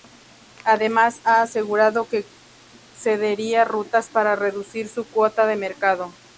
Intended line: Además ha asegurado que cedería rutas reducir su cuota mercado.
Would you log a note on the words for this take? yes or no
yes